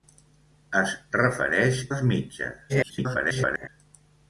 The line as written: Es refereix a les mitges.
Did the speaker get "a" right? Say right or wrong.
wrong